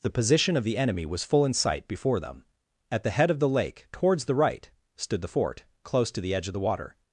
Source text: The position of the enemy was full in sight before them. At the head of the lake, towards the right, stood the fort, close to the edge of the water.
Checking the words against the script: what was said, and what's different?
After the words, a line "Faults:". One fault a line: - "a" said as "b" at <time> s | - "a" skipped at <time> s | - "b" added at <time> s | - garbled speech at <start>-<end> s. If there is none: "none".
The position of the enemy was full in sight before them. At the head of the lake, towards the right, stood the fort, close to the edge of the water.
Faults:
none